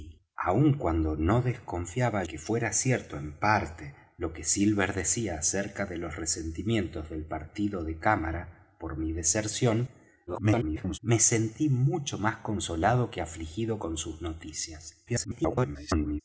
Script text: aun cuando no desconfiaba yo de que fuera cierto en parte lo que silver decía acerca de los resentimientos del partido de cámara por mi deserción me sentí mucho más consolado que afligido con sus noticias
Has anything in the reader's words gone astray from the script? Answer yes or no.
yes